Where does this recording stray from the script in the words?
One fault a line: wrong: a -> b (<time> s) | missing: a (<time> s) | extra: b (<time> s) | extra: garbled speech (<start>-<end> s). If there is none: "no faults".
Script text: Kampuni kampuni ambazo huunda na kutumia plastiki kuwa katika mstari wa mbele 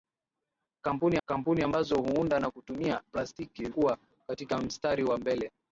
no faults